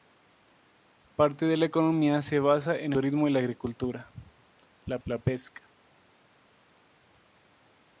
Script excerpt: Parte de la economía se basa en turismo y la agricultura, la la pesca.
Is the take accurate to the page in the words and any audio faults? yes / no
yes